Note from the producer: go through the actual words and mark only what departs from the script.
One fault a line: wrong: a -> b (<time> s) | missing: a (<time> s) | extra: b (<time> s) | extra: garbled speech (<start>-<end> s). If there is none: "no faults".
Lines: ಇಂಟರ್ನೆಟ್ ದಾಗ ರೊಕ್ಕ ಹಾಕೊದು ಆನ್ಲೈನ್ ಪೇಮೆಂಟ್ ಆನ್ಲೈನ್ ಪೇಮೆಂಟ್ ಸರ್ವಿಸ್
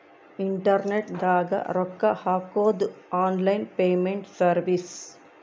missing: ಆನ್ಲೈನ್ ಪೇಮೆಂಟ್ (4.3 s)